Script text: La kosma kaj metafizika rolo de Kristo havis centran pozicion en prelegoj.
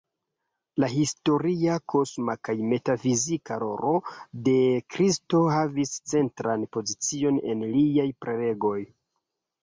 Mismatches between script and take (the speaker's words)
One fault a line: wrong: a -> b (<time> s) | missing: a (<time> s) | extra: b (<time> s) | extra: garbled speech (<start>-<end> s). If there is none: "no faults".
extra: historia (0.9 s)
extra: liaj (7.7 s)